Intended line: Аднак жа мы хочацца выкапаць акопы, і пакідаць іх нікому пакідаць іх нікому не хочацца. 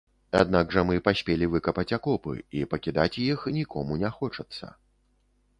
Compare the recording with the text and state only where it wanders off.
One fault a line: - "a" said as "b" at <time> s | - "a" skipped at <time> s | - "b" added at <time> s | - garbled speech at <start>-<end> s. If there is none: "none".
- "хочацца" said as "паспелі" at 1.1 s
- "пакідаць іх нікому" skipped at 4.0 s